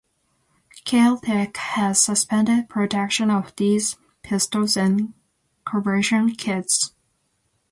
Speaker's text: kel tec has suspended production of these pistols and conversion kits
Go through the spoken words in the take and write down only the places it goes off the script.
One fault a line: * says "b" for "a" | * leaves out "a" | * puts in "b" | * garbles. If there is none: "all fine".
all fine